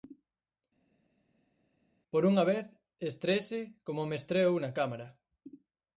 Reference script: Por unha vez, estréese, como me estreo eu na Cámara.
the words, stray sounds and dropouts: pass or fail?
pass